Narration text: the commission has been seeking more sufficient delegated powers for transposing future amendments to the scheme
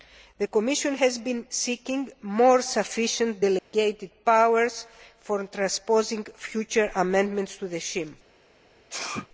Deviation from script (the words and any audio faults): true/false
true